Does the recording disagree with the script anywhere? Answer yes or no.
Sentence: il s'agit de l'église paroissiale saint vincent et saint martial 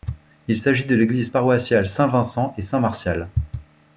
no